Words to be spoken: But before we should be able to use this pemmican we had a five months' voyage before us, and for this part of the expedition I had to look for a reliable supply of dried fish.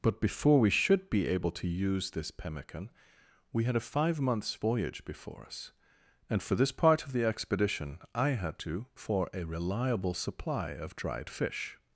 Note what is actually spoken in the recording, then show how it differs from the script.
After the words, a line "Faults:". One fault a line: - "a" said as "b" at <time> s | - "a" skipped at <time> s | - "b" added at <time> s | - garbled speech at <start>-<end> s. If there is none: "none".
But before we should be able to use this pemmican we had a five months' voyage before us, and for this part of the expedition I had to for a reliable supply of dried fish.
Faults:
- "look" skipped at 8.9 s